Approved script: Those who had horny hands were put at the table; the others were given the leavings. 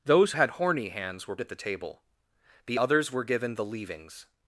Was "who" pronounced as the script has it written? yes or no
no